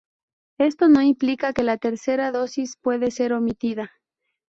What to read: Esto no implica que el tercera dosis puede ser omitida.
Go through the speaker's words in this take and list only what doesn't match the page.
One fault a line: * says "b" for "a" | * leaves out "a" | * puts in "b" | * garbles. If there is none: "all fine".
* says "la" for "el"